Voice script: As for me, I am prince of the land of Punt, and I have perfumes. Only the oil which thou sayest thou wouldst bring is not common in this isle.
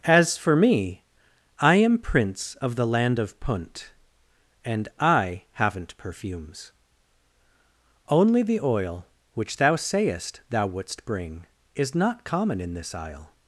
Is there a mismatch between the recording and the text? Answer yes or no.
yes